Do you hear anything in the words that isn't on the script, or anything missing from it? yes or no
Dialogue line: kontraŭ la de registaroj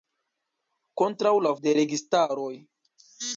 no